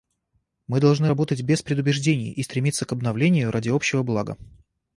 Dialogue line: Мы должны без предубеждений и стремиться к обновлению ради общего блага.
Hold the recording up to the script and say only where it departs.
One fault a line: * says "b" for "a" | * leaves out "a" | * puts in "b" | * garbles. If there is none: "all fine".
* puts in "работать"